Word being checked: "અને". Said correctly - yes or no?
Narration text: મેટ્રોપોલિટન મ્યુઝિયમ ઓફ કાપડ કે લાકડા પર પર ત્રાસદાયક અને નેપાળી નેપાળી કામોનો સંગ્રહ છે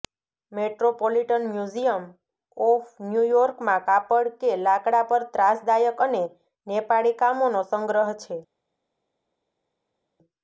yes